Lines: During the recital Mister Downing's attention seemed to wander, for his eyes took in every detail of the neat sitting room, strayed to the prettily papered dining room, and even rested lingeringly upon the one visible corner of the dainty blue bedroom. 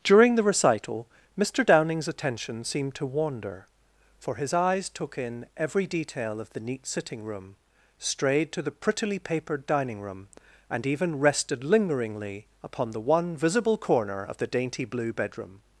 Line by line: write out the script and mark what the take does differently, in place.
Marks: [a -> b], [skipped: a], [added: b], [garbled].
During the recital Mister Downing's attention seemed to wander, for his eyes took in every detail of the neat sitting room, strayed to the prettily papered dining room, and even rested lingeringly upon the one visible corner of the dainty blue bedroom.